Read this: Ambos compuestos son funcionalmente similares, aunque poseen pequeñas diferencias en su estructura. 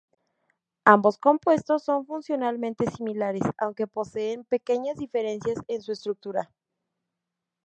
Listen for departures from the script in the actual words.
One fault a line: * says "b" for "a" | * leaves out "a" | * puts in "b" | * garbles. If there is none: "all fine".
all fine